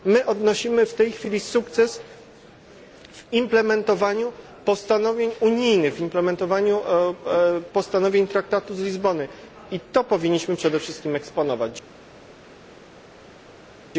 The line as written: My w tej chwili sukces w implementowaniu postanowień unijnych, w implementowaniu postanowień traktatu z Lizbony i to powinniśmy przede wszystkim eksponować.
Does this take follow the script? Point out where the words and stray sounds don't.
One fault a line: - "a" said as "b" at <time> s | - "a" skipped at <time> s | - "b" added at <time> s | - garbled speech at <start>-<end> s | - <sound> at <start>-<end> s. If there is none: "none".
- "odnosimy" added at 0.2 s